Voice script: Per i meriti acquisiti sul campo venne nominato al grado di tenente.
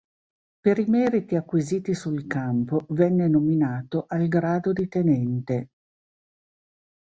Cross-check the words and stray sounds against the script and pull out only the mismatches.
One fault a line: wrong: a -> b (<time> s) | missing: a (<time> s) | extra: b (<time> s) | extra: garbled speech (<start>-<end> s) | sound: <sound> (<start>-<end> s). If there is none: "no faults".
no faults